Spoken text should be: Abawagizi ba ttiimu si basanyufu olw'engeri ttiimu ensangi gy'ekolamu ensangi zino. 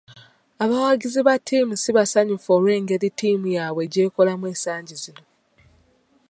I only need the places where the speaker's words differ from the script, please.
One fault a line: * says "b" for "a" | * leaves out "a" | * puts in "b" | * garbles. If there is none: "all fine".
* says "yaabwe" for "ensangi"